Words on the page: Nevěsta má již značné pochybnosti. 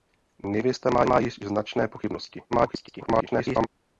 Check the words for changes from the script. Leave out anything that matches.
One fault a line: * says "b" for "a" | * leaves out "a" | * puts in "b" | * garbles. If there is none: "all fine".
* puts in "má"
* garbles